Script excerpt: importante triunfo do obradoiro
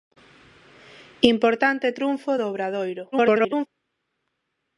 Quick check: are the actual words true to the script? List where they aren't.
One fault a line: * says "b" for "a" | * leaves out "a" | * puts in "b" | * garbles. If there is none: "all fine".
* garbles